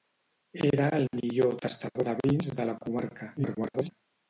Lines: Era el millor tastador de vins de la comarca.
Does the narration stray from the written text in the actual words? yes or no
yes